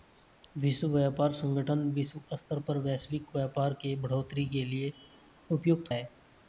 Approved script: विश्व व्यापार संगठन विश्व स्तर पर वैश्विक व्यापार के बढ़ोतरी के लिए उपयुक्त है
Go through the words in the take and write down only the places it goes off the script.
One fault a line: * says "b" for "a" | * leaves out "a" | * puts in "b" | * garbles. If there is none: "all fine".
all fine